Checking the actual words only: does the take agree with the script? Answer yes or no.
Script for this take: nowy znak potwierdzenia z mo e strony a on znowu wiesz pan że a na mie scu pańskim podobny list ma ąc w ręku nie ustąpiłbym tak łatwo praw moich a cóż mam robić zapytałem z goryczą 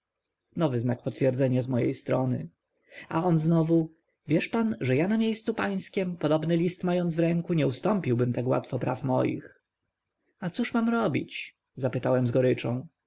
yes